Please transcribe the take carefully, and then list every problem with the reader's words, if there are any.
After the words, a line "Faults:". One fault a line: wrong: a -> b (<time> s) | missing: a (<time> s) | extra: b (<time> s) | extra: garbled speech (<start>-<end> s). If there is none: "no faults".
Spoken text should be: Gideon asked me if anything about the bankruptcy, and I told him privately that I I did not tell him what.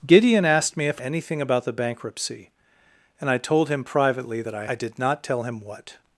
Gideon asked me if anything about the bankruptcy, and I told him privately that I I did not tell him what.
Faults:
no faults